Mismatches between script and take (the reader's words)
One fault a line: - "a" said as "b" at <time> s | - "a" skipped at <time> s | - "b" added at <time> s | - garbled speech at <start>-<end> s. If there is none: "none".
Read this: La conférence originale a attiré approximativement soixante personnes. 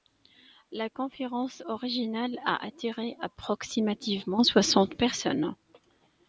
none